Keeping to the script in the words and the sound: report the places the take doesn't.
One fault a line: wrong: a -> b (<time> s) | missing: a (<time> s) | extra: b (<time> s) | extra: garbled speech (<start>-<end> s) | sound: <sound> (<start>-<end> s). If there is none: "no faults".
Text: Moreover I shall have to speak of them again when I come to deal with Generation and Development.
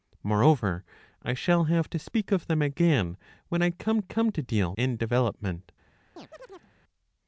extra: come (4.0 s)
missing: with Generation (4.7 s)
sound: chirp (6.2-6.7 s)